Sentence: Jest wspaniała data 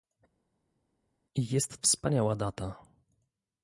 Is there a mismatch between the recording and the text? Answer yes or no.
no